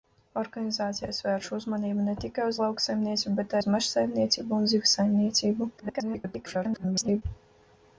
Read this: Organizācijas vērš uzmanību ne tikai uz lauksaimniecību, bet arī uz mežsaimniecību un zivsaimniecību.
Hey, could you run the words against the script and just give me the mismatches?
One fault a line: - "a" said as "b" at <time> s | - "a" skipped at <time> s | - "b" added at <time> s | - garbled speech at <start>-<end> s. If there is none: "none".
- "arī" skipped at 3.6 s
- garbled speech at 5.8-7.2 s